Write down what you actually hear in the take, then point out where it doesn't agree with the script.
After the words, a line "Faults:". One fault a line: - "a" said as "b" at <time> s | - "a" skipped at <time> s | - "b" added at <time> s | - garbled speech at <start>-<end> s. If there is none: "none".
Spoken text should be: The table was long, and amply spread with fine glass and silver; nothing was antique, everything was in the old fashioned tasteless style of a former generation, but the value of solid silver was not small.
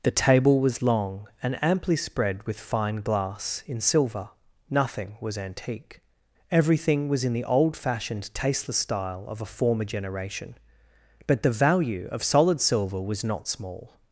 The table was long, and amply spread with fine glass in silver; nothing was antique, everything was in the old fashioned tasteless style of a former generation, but the value of solid silver was not small.
Faults:
- "and" said as "in" at 3.7 s